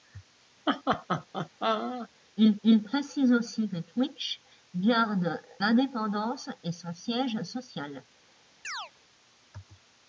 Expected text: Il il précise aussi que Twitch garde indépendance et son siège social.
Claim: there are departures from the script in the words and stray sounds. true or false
true